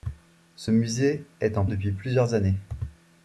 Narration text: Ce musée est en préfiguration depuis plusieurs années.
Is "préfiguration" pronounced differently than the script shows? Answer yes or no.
yes